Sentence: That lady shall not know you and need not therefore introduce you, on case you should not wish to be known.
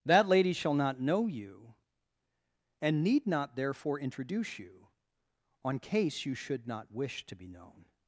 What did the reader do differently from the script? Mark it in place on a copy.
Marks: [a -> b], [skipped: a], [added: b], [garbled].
That lady shall not know you and need not therefore introduce you, on case you should not wish to be known.